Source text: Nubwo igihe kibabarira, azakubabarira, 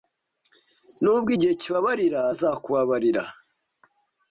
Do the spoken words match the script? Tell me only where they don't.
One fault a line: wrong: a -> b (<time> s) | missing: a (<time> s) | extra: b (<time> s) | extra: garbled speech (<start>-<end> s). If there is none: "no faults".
no faults